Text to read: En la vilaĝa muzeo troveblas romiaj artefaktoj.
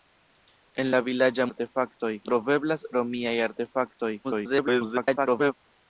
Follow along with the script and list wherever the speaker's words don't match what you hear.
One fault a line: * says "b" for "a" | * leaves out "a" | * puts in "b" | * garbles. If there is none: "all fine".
* says "artefaktoj" for "muzeo"
* garbles